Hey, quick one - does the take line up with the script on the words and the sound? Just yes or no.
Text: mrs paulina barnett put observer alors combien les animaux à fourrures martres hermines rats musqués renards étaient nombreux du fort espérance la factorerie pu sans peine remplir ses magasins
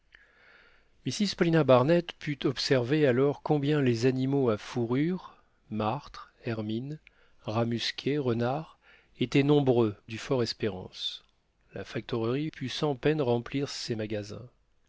yes